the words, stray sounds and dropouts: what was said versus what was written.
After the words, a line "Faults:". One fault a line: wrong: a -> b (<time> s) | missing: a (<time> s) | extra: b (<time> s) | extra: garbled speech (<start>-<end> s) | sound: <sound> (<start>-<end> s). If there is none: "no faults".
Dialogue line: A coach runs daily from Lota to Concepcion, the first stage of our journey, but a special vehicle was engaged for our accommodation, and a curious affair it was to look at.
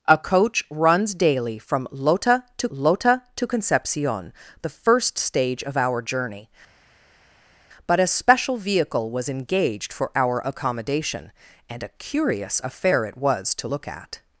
A coach runs daily from Lota to Lota to Concepcion, the first stage of our journey, but a special vehicle was engaged for our accommodation, and a curious affair it was to look at.
Faults:
extra: Lota to (2.7 s)